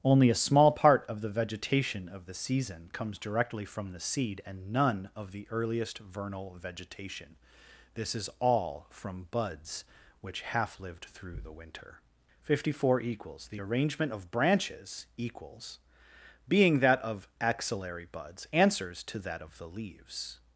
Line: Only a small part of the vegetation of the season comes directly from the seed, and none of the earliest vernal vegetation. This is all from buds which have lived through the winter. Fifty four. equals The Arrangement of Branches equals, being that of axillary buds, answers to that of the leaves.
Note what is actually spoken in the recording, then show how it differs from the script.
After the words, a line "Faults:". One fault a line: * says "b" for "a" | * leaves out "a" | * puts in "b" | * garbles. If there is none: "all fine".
Only a small part of the vegetation of the season comes directly from the seed, and none of the earliest vernal vegetation. This is all from buds which half lived through the winter. Fifty four. equals The Arrangement of Branches equals, being that of axillary buds, answers to that of the leaves.
Faults:
* says "half" for "have"